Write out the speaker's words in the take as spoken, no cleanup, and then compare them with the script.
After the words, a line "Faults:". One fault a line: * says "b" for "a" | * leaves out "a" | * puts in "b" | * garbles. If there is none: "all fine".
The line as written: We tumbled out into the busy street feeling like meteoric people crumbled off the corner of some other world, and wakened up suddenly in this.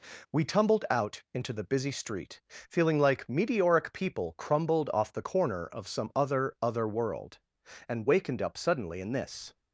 We tumbled out into the busy street feeling like meteoric people crumbled off the corner of some other other world, and wakened up suddenly in this.
Faults:
* puts in "other"